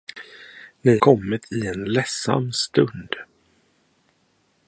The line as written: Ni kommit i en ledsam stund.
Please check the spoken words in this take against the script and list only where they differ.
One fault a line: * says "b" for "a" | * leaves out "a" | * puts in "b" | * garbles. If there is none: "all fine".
all fine